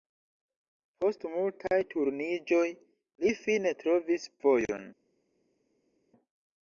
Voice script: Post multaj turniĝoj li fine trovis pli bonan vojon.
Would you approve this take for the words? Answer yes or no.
no